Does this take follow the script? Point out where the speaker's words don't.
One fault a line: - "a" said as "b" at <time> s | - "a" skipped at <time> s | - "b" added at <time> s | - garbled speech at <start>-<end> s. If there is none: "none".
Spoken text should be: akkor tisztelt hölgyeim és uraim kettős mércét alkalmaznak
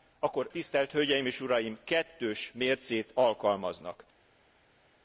none